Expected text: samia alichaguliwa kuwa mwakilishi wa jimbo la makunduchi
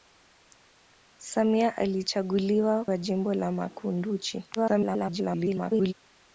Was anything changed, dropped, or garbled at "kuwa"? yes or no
yes